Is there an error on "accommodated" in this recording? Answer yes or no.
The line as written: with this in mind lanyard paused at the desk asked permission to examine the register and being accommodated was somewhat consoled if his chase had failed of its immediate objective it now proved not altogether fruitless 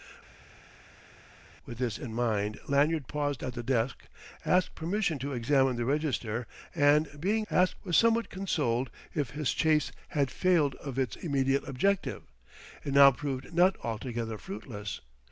yes